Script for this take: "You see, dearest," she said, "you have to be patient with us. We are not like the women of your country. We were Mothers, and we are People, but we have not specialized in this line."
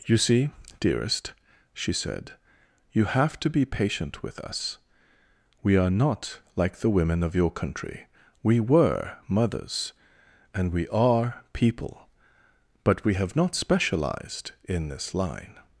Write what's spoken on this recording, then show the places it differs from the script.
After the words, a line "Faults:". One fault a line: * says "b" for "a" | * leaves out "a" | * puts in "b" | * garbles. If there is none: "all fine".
"You see, dearest," she said, "you have to be patient with us. We are not like the women of your country. We were Mothers, and we are People, but we have not specialized in this line."
Faults:
all fine